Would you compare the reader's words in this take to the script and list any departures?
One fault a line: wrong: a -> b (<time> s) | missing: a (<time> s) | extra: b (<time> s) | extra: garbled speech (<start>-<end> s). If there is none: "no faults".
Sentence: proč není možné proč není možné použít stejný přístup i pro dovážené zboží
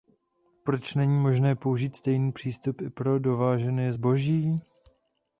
missing: proč není možné (1.6 s)